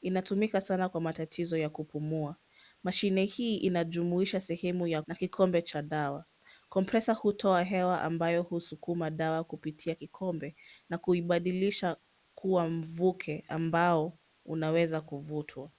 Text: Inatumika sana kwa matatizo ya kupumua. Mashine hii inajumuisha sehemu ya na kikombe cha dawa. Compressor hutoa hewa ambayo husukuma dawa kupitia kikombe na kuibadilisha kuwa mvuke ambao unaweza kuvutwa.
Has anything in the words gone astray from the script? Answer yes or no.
no